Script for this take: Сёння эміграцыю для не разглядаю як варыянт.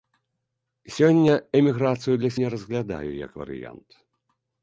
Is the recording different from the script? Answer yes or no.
no